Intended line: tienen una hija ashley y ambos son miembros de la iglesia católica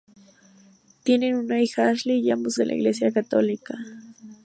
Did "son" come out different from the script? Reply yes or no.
yes